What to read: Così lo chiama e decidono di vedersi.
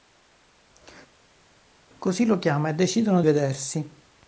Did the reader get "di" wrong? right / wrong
wrong